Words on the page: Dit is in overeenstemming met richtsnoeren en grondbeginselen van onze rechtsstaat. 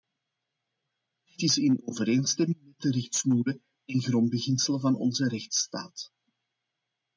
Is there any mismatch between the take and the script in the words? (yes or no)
yes